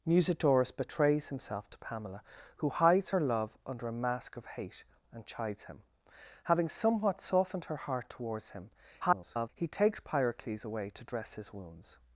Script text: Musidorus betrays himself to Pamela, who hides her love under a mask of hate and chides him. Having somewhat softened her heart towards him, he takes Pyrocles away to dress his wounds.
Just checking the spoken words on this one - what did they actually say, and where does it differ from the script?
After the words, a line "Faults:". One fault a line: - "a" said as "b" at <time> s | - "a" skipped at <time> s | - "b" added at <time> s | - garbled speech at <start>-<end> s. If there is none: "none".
Musidorus betrays himself to Pamela, who hides her love under a mask of hate and chides him. Having somewhat softened her heart towards him, [garbled] he takes Pyrocles away to dress his wounds.
Faults:
- garbled speech at 9.0-9.5 s